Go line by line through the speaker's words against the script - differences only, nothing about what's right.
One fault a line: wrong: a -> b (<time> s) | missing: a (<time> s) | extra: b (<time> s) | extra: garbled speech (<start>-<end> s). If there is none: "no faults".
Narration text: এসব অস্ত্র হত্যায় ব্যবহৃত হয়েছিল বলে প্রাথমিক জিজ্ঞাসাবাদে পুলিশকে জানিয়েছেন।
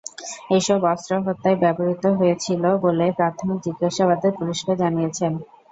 no faults